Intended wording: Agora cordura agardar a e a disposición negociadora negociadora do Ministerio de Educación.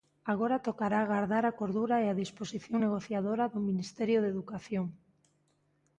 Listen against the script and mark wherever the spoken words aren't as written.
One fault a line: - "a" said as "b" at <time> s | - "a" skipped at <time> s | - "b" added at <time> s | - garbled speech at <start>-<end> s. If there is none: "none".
- "cordura" said as "tocará" at 0.7 s
- "cordura" added at 1.6 s
- "negociadora" skipped at 3.4 s